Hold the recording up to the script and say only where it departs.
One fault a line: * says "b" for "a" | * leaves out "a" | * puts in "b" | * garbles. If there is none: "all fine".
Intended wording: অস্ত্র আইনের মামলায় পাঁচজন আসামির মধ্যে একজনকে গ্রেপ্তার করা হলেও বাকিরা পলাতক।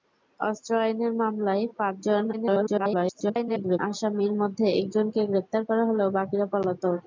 * garbles